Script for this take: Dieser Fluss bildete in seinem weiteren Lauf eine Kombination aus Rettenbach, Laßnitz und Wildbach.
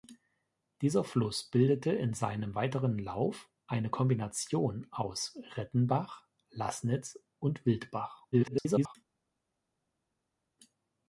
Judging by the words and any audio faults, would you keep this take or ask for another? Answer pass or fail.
fail